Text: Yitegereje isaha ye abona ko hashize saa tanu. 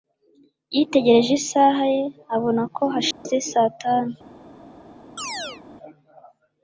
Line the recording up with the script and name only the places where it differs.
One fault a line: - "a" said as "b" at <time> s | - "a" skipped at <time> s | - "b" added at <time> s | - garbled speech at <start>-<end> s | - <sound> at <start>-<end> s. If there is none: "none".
- dropout at 3.1-3.3 s
- chirp at 5.2-5.6 s